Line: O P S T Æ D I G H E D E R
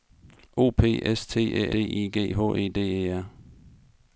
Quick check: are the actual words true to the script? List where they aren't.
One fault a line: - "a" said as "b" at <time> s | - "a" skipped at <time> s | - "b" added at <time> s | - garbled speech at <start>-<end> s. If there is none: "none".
none